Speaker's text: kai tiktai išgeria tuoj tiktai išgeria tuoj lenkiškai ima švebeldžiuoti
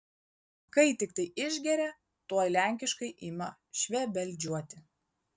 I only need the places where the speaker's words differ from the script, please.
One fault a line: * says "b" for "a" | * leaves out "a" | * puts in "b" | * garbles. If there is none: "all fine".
* leaves out "tiktai išgeria tuoj"